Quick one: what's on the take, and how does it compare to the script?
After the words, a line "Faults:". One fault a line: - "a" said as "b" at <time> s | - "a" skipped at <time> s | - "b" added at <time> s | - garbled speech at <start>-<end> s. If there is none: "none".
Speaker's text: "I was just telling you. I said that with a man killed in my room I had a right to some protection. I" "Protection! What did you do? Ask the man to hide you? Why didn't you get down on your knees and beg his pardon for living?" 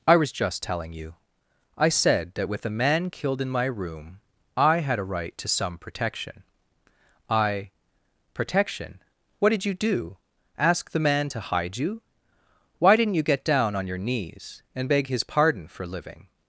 "I was just telling you. I said that with a man killed in my room I had a right to some protection. I" "Protection! What did you do? Ask the man to hide you? Why didn't you get down on your knees and beg his pardon for living?"
Faults:
none